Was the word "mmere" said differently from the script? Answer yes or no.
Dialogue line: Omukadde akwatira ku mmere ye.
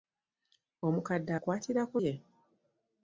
yes